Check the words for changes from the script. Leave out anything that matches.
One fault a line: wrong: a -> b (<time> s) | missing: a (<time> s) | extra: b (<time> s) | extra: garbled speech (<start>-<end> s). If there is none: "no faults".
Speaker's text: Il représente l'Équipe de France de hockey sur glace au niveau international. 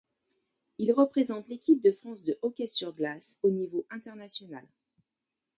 no faults